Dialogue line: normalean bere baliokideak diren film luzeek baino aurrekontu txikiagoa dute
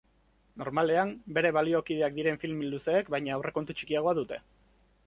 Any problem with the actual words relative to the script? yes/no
no